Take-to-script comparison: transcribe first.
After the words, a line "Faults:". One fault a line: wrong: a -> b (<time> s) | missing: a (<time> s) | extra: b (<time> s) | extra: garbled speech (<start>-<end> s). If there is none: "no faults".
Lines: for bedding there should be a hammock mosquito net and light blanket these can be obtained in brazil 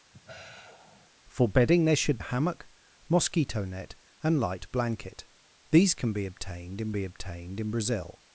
for bedding there should a hammock mosquito net and light blanket these can be obtained in be obtained in brazil
Faults:
missing: be (2.2 s)
extra: be obtained in (6.9 s)